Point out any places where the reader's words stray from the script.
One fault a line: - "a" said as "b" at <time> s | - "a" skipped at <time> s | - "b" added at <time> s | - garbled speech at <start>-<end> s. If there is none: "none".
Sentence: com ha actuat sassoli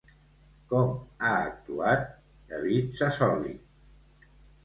- "david" added at 2.5 s